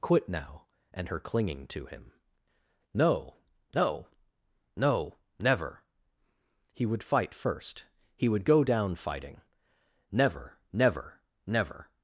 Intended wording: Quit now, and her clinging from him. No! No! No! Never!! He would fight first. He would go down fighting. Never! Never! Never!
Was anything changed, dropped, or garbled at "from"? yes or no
yes